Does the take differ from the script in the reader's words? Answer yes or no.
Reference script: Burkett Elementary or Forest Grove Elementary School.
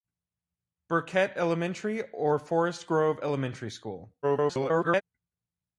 yes